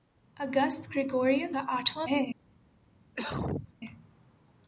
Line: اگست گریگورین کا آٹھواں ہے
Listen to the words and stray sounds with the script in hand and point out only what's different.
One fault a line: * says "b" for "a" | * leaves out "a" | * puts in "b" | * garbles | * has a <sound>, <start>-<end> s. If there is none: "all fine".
* has a cough, 3.2-3.7 s